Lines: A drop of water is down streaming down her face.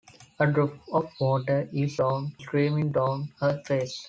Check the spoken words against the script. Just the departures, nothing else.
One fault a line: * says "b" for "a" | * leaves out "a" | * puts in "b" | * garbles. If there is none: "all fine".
all fine